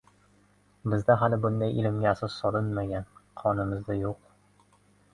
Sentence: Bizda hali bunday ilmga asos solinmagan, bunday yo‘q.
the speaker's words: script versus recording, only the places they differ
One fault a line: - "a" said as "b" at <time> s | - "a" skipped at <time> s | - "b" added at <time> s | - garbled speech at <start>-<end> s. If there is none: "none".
- "bunday" said as "qonimizda" at 3.5 s